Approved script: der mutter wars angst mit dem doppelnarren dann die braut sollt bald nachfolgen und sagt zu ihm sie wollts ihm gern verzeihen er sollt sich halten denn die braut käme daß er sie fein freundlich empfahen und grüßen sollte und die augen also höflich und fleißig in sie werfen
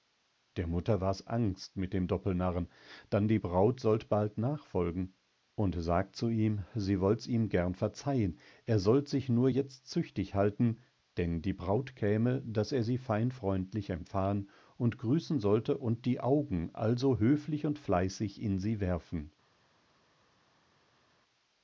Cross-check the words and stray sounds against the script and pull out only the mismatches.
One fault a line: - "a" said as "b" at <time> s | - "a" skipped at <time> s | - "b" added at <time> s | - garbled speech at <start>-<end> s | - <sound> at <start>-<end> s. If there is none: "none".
- "nur jetzt züchtig" added at 9.3 s